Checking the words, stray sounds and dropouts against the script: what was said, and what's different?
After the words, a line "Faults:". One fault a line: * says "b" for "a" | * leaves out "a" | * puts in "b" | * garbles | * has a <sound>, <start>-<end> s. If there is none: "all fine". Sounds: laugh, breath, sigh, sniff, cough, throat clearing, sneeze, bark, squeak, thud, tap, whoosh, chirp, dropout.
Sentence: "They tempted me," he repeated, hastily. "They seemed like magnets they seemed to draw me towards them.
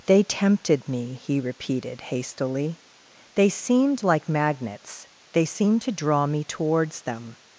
"They tempted me," he repeated, hastily. "They seemed like magnets they seemed to draw me towards them.
Faults:
all fine